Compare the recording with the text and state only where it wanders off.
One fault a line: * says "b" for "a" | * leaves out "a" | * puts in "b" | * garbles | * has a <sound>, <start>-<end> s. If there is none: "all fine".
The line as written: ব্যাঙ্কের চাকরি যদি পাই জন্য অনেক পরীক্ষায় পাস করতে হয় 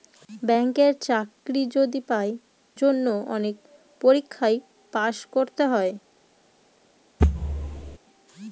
* has a thud, 7.2-8.0 s